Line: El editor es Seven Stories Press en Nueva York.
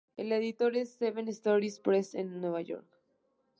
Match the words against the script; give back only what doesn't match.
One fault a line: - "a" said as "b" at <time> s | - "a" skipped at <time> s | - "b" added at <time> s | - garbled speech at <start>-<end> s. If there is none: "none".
none